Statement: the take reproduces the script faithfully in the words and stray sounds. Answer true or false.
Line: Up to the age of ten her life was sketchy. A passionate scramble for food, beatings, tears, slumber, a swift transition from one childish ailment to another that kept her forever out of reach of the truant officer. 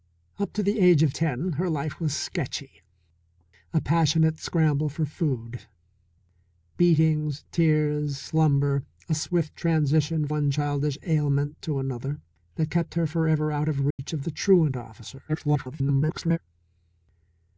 false